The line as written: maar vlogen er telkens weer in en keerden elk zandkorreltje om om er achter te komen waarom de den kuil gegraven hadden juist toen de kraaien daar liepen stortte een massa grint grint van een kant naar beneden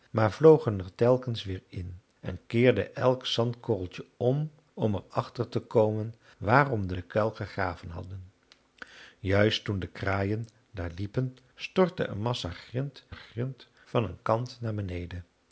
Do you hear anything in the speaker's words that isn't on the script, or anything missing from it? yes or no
no